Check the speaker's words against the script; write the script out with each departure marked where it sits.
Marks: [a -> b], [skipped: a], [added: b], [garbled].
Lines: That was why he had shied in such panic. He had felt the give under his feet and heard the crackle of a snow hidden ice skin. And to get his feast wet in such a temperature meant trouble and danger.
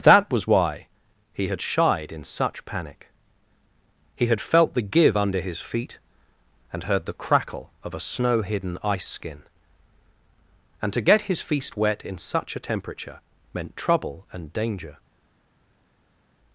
That was why he had shied in such panic. He had felt the give under his feet and heard the crackle of a snow hidden ice skin. And to get his feast wet in such a temperature meant trouble and danger.